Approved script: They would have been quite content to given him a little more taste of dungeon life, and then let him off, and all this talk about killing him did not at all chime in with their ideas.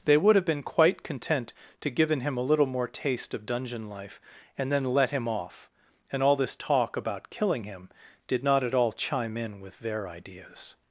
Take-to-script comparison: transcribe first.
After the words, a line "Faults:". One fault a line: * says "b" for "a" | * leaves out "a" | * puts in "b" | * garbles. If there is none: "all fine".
They would have been quite content to given him a little more taste of dungeon life, and then let him off, and all this talk about killing him did not at all chime in with their ideas.
Faults:
all fine